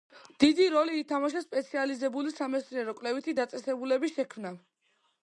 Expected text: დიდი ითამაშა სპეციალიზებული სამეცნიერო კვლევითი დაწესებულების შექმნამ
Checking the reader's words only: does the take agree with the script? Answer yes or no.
no